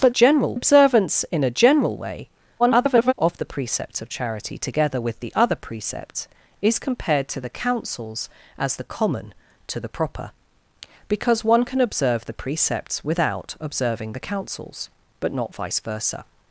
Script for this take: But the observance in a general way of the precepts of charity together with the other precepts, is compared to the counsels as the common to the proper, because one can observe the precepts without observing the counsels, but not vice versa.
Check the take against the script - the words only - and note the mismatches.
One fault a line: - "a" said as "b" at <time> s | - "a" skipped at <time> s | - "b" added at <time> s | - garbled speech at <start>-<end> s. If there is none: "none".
- "the" said as "general" at 0.1 s
- garbled speech at 2.6-3.1 s